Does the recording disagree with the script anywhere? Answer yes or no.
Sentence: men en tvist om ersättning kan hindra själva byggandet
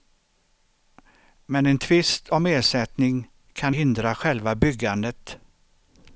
no